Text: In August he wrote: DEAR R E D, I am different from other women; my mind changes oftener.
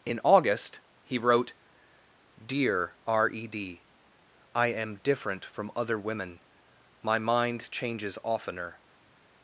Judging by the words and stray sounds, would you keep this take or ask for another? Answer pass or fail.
pass